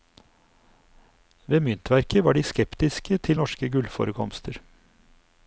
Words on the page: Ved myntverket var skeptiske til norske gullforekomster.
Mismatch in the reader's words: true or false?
true